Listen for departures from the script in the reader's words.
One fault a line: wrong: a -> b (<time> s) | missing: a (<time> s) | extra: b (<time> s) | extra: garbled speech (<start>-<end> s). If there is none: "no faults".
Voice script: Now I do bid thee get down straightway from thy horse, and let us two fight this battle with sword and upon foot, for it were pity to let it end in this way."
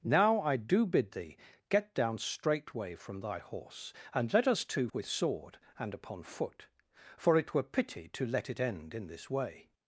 missing: fight this battle (4.9 s)